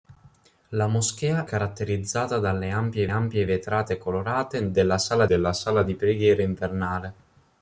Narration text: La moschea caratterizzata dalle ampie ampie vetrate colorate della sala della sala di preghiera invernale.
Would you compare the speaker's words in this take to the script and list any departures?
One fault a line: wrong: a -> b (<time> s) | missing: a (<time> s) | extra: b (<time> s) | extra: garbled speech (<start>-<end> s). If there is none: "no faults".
no faults